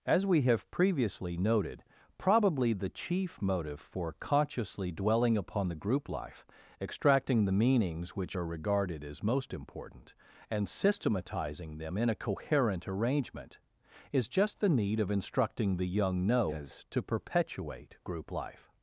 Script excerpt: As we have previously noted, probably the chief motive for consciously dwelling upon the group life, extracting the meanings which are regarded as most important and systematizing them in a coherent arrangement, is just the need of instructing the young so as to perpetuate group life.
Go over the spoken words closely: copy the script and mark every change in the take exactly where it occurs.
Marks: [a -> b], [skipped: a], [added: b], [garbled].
As we have previously noted, probably the chief motive for consciously dwelling upon the group life, extracting the meanings which are regarded as most important and systematizing them in a coherent arrangement, is just the need of instructing the young [so -> no] as to perpetuate group life.